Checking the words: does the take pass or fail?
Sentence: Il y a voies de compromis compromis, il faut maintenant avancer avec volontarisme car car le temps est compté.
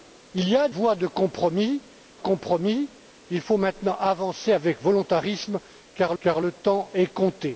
pass